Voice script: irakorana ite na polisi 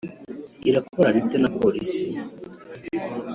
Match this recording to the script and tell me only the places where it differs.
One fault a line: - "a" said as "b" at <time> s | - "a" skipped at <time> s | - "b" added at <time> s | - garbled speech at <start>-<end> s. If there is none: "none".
none